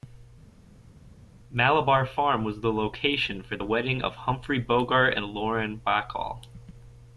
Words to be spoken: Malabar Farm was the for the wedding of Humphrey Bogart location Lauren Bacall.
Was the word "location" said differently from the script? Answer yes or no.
yes